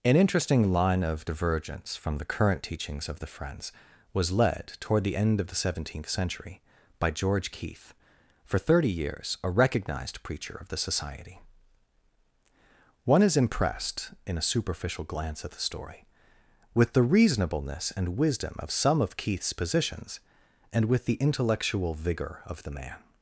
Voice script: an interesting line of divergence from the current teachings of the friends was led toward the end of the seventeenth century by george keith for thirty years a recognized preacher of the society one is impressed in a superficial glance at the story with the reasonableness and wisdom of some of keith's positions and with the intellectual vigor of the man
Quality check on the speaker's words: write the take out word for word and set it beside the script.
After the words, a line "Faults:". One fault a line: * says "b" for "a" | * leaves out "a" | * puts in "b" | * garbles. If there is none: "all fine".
an interesting line of divergence from the current teachings of the friends was led toward the end of the seventeenth century by george keith for thirty years a recognized preacher of the society one is impressed in a superficial glance at the story with the reasonableness and wisdom of some of keith's positions and with the intellectual vigor of the man
Faults:
all fine